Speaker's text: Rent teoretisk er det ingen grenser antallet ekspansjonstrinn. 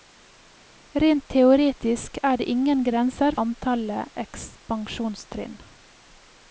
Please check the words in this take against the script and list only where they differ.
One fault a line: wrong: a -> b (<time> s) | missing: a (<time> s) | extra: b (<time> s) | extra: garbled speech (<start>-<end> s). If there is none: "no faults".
no faults